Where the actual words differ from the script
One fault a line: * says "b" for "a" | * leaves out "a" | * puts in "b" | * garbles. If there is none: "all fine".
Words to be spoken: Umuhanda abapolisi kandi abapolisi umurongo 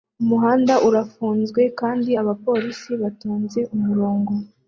* says "urafunzwe" for "abapolisi"
* puts in "batonze"